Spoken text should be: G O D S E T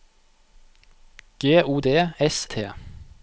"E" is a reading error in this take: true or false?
true